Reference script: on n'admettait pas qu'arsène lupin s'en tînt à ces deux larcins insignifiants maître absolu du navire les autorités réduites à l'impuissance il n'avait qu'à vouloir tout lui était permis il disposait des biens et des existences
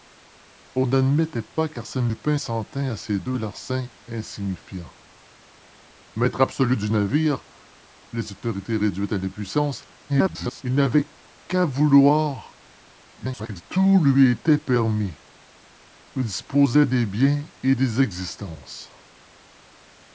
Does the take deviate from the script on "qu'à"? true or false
false